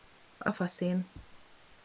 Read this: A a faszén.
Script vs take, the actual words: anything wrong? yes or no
no